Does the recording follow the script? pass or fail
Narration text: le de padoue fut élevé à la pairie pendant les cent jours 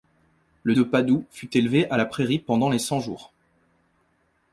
pass